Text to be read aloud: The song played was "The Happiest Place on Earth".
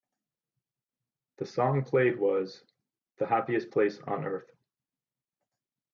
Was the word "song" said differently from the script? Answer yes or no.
no